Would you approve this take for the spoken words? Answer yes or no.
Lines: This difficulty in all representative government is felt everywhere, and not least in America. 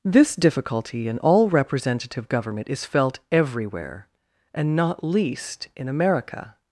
yes